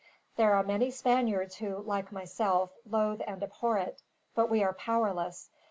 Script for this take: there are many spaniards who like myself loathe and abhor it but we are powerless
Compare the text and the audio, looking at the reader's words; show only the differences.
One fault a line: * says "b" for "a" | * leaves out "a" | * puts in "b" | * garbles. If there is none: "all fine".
all fine